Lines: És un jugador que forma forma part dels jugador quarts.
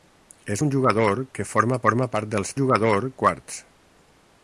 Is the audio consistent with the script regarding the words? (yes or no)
yes